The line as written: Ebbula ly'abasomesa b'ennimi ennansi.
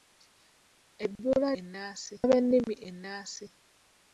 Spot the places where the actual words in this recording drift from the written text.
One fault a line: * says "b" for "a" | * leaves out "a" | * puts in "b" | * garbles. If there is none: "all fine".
* says "ennansi" for "ly'abasomesa"